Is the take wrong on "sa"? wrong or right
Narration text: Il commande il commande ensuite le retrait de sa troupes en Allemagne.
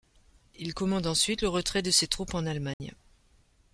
wrong